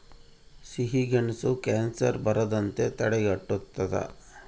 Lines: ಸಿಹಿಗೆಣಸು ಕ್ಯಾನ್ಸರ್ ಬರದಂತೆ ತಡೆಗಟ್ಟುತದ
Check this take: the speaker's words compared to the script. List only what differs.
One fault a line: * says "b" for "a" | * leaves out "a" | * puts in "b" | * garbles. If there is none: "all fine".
all fine